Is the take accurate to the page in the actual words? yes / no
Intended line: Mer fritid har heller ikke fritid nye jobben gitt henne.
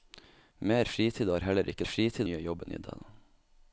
yes